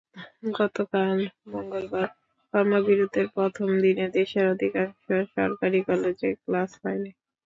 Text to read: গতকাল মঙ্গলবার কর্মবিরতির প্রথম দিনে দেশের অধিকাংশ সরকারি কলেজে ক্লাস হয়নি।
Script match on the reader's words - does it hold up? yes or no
yes